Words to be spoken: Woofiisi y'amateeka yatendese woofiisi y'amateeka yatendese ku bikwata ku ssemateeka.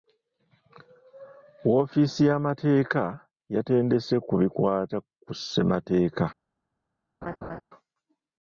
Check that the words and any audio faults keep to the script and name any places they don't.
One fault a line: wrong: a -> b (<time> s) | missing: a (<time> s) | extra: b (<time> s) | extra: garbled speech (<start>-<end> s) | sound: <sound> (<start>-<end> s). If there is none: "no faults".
missing: woofiisi y'amateeka yatendese (4.2 s)
sound: laugh (7.2-7.6 s)